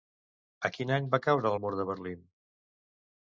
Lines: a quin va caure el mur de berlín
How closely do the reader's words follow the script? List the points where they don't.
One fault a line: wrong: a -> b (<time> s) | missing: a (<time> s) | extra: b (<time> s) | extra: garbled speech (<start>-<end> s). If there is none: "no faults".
extra: any (1.0 s)